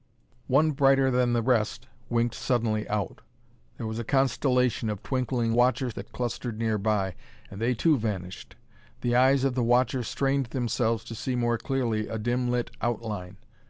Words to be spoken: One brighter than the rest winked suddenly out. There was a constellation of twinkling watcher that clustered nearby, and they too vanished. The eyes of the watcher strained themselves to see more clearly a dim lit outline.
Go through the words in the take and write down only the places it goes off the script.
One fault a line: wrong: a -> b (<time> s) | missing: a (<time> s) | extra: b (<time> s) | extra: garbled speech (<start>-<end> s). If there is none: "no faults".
no faults